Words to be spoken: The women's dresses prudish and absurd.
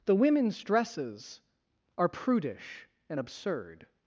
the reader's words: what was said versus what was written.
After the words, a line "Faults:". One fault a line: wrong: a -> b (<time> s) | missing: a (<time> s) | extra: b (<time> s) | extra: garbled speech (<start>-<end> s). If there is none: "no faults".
The women's dresses are prudish and absurd.
Faults:
extra: are (2.0 s)